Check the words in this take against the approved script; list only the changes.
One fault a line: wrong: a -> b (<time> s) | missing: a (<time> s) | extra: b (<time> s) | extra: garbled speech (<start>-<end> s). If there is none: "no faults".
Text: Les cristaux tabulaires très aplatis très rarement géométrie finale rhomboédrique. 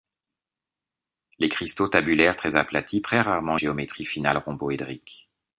no faults